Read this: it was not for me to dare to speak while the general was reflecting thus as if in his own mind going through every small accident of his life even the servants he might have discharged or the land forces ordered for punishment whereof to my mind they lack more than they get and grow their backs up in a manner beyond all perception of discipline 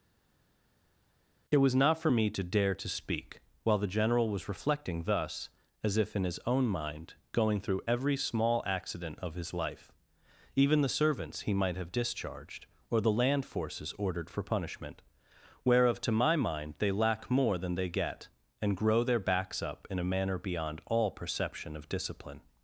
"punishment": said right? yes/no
yes